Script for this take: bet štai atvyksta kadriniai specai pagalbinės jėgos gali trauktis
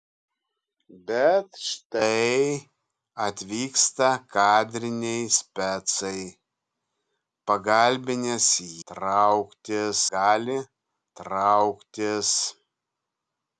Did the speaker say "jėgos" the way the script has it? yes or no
no